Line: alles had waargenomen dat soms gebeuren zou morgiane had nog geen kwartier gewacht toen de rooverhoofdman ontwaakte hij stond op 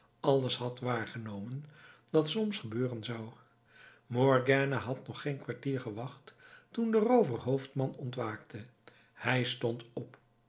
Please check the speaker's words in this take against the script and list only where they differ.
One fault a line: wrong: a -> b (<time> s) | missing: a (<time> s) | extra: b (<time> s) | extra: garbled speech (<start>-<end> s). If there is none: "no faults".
no faults